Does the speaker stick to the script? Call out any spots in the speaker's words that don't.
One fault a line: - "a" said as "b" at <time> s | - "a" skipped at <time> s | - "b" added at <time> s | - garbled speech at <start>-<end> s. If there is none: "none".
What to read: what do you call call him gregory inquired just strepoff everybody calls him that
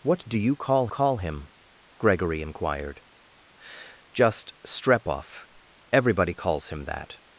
none